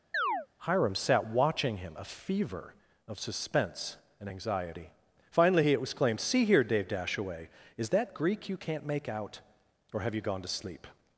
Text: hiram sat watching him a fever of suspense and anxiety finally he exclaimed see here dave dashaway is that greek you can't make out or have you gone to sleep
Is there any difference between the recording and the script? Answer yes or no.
no